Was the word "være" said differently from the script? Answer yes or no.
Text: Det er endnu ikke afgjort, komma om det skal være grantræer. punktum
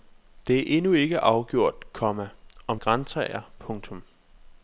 yes